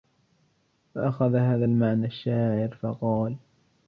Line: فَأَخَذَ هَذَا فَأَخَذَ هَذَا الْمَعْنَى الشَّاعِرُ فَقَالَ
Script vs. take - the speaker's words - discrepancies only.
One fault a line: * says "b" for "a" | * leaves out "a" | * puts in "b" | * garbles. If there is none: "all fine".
* leaves out "فَأَخَذَ هَذَا"